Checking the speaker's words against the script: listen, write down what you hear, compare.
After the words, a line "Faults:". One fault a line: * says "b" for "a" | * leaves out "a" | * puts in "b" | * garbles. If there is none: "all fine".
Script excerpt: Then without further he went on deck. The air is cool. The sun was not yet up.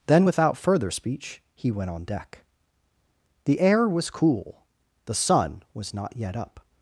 Then without further speech he went on deck. The air was cool. The sun was not yet up.
Faults:
* puts in "speech"
* says "was" for "is"